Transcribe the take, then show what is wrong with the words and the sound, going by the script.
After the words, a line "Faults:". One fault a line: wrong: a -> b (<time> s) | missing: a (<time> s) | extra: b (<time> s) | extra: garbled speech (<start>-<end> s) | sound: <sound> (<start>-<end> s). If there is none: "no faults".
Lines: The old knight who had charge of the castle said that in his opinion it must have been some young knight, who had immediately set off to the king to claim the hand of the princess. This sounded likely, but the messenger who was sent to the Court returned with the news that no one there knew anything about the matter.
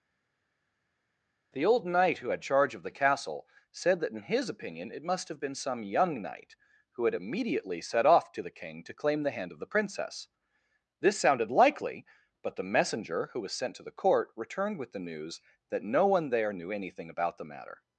The old knight who had charge of the castle said that in his opinion it must have been some young knight, who had immediately set off to the king to claim the hand of the princess. This sounded likely, but the messenger who was sent to the Court returned with the news that no one there knew anything about the matter.
Faults:
no faults